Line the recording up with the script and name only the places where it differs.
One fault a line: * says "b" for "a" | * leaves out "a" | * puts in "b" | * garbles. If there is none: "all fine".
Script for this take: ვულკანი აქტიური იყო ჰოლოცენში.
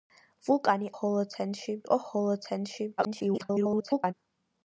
* says "ჰოლოცენში" for "აქტიური"
* garbles